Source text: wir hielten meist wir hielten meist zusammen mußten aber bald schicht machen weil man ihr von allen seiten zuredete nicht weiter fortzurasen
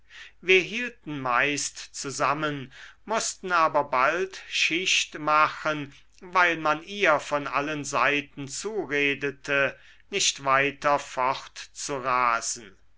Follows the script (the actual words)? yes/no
no